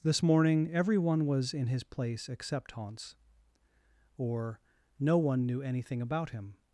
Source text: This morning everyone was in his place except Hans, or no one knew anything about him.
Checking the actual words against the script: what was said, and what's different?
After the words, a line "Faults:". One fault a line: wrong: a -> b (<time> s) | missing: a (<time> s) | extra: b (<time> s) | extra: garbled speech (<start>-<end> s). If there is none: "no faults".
This morning everyone was in his place except Hans, or no one knew anything about him.
Faults:
no faults